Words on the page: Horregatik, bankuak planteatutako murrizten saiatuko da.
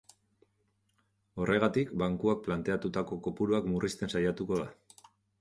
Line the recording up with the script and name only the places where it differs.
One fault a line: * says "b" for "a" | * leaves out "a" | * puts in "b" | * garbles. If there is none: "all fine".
* puts in "kopuruak"